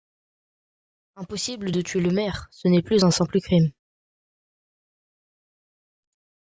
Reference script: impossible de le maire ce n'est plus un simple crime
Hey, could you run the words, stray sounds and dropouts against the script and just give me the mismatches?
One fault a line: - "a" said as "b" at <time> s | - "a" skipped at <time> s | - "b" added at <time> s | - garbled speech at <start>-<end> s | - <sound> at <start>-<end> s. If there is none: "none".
- "tuer" added at 1.8 s